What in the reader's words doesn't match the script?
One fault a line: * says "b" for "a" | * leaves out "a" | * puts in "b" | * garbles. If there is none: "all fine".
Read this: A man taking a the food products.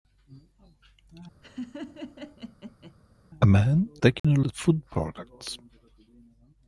all fine